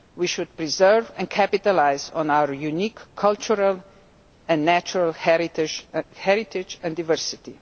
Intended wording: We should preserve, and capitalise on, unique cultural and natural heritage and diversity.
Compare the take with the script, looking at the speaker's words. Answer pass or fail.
fail